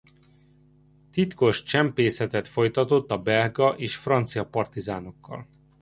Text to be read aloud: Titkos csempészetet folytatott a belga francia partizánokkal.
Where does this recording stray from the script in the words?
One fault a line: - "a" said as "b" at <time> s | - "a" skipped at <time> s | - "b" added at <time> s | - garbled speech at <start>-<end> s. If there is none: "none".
- "és" added at 3.7 s